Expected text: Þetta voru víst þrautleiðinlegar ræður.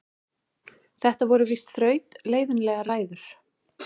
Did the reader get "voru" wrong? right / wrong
right